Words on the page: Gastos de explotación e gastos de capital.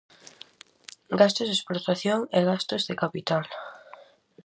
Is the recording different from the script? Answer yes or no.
no